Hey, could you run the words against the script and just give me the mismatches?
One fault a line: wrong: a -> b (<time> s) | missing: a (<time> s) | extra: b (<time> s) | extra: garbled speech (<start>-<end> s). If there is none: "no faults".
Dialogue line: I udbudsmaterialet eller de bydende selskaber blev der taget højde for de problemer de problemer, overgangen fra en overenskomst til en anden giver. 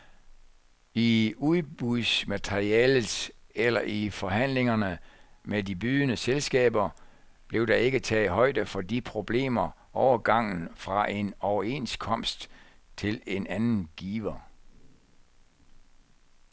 extra: i forhandlingerne med (3.8 s)
extra: ikke (7.8 s)
missing: de problemer (9.7 s)